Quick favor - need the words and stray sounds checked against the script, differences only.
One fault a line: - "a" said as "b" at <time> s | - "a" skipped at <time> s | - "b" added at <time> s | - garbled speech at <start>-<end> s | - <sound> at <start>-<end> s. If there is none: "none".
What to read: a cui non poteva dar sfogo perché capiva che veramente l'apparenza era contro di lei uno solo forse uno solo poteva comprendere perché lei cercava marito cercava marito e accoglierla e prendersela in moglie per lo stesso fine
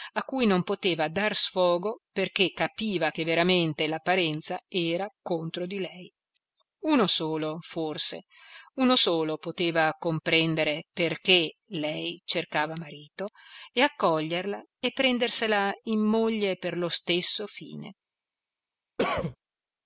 - "cercava marito" skipped at 13.3 s
- cough at 19.0-19.4 s